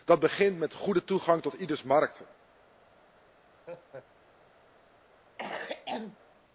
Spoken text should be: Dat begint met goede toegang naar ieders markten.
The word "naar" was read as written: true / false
false